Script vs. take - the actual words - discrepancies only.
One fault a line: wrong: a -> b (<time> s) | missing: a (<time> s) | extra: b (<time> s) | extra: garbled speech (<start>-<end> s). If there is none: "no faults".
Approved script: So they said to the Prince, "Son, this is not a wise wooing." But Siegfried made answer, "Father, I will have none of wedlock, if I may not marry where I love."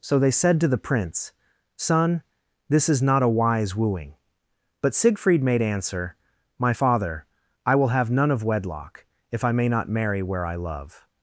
extra: My (6.6 s)